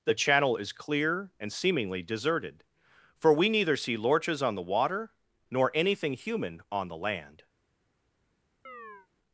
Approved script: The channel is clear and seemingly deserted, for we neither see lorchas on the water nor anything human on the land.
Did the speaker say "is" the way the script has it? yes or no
yes